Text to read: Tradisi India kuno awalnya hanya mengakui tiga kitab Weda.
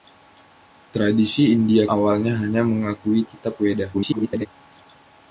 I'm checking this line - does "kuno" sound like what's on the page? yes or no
no